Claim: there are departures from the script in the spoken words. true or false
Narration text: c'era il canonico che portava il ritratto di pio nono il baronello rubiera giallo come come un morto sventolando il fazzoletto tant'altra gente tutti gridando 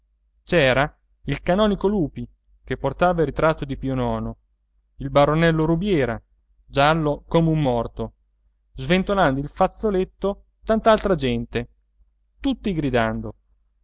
true